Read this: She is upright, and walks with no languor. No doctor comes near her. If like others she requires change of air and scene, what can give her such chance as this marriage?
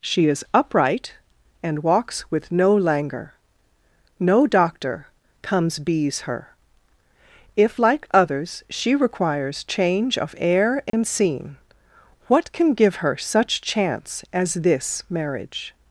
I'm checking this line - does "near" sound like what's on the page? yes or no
no